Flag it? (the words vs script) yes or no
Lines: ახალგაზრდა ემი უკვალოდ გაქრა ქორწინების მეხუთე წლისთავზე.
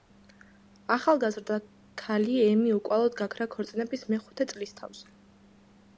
yes